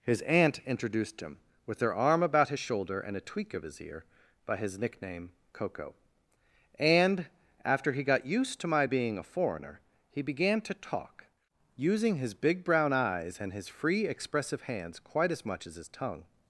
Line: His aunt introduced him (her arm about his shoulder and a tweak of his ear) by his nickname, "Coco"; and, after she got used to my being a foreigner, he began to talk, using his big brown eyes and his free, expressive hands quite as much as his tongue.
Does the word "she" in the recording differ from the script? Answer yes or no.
yes